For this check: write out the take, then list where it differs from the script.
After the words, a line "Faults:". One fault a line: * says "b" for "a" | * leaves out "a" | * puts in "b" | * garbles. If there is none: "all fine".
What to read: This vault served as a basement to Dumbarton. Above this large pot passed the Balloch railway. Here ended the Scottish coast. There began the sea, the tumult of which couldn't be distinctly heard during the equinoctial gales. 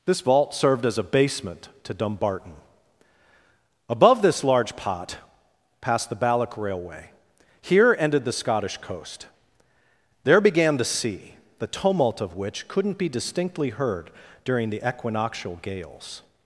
This vault served as a basement to Dumbarton. Above this large pot passed the Balloch railway. Here ended the Scottish coast. There began the sea, the tumult of which couldn't be distinctly heard during the equinoctial gales.
Faults:
all fine